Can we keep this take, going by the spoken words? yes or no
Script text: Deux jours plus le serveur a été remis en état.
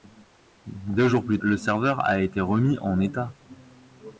yes